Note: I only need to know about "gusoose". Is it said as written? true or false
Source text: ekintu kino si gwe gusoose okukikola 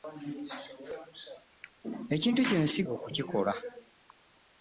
false